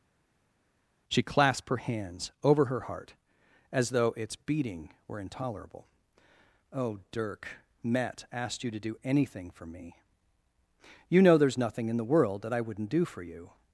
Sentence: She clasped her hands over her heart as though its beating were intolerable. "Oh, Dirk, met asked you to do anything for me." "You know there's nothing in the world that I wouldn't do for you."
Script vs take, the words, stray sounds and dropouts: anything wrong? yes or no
no